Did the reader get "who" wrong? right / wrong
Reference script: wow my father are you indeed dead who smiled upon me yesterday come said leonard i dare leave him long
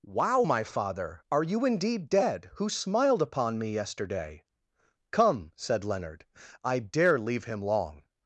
right